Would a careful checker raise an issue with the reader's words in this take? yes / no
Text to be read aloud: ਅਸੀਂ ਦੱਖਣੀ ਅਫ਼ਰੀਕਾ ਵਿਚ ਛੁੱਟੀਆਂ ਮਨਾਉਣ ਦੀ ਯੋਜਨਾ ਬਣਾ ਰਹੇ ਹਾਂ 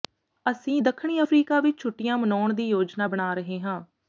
no